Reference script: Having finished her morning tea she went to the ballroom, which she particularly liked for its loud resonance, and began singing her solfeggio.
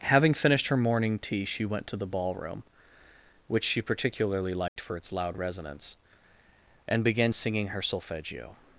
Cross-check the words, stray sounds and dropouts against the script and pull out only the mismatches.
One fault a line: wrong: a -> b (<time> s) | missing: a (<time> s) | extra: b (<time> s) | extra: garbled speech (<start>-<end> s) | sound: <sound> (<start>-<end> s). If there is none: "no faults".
sound: dropout (4.7-4.8 s)